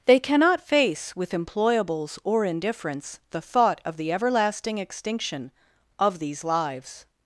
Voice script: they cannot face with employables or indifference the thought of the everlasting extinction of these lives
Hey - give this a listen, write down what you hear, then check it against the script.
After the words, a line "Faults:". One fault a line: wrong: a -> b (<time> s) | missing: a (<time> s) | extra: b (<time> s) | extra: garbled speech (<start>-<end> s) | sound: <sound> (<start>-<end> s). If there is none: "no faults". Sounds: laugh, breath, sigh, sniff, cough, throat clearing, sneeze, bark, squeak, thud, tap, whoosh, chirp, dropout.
they cannot face with employables or indifference the thought of the everlasting extinction of these lives
Faults:
no faults